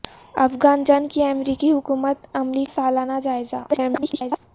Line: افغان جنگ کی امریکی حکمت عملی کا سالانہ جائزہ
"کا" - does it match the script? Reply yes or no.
no